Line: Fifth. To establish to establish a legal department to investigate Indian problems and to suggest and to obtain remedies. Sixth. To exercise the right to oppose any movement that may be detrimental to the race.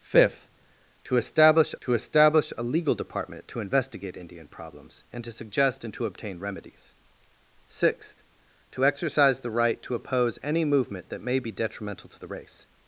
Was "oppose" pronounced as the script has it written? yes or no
yes